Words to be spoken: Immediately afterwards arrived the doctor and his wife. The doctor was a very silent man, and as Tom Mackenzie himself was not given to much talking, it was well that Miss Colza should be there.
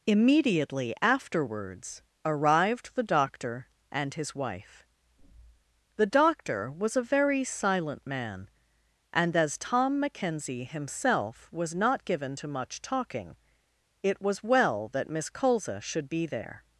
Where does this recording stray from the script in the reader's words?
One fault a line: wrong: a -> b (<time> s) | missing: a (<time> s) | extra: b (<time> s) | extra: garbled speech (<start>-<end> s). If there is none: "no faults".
no faults